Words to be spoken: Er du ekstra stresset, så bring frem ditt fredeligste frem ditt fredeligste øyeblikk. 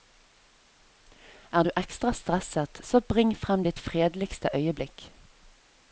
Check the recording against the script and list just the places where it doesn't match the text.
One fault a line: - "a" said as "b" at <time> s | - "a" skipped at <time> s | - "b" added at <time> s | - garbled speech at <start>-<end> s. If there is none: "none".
- "frem ditt fredeligste" skipped at 4.5 s